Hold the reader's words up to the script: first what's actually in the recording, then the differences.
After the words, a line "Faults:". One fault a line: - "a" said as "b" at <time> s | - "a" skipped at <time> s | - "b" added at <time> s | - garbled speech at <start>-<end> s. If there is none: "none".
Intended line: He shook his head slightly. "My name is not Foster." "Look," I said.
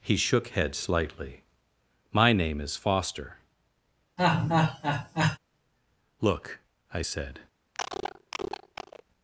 He shook head slightly. "My name is Foster." "Look," I said.
Faults:
- "his" skipped at 0.5 s
- "not" skipped at 2.8 s